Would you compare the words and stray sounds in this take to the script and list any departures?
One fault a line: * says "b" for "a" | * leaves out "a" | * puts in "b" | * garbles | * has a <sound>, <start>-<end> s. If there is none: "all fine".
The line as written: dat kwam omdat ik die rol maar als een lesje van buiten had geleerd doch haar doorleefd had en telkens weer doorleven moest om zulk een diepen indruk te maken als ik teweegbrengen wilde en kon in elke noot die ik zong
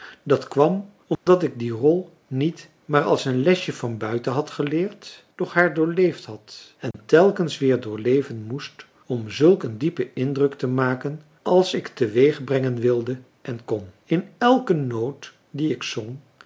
* has a dropout, 1.1-1.3 s
* puts in "niet"
* has a dropout, 6.9-6.9 s